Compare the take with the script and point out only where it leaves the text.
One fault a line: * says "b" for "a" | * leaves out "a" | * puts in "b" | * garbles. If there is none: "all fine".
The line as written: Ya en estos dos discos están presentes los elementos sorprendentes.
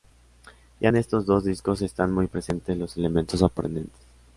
* puts in "muy"